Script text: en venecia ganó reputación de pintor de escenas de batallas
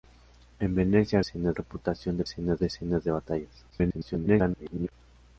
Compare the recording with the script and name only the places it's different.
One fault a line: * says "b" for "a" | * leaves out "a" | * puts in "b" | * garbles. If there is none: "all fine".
* says "escenas" for "ganó"
* says "escenas" for "pintor"
* garbles